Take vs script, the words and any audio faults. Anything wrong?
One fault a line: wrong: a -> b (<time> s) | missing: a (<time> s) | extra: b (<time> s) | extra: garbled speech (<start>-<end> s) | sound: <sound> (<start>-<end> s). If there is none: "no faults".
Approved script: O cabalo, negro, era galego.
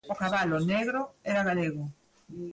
no faults